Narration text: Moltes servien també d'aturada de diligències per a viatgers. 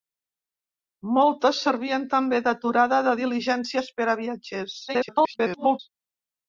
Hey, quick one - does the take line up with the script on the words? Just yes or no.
no